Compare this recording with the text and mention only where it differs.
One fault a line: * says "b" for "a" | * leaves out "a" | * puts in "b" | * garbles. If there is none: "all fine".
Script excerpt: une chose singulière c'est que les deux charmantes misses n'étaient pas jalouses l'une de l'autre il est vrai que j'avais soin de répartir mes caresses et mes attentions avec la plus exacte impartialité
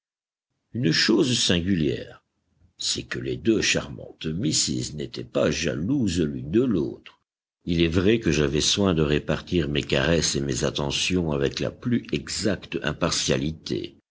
all fine